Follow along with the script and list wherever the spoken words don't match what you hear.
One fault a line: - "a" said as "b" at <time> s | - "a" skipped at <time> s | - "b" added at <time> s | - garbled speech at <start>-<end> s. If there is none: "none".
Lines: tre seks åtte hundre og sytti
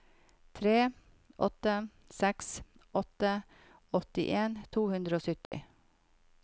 - "åtte" added at 1.4 s
- "åttien to" added at 4.0 s